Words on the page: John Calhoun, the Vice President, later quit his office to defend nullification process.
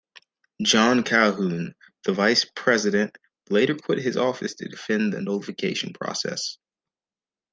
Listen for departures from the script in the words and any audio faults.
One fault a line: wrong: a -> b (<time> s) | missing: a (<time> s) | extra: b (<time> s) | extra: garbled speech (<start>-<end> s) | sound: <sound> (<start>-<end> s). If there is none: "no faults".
extra: the (5.1 s)